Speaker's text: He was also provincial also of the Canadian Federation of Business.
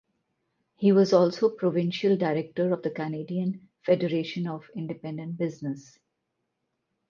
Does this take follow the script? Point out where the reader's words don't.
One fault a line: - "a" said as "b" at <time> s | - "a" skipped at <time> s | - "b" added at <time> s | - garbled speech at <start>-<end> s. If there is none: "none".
- "also" said as "director" at 2.2 s
- "Independent" added at 4.7 s